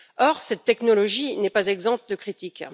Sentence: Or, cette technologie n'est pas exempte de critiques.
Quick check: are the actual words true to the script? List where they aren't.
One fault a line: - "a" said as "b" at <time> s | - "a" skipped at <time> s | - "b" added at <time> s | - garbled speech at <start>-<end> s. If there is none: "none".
none